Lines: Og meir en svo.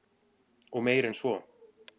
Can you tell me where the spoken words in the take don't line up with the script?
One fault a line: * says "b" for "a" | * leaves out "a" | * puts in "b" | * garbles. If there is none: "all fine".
all fine